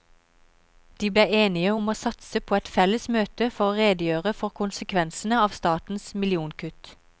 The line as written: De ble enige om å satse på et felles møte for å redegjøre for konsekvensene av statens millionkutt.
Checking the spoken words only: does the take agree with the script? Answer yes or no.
yes